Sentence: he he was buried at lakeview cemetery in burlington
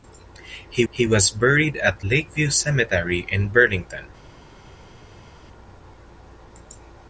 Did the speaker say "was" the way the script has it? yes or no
yes